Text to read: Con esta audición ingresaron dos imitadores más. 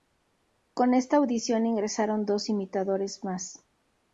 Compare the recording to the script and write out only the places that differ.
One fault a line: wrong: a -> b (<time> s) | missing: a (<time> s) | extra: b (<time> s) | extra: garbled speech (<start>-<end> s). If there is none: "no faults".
no faults